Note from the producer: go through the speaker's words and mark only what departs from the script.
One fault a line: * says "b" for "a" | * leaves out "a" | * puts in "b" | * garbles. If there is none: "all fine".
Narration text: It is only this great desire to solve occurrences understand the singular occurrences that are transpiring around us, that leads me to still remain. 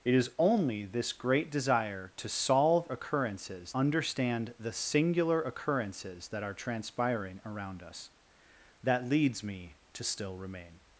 all fine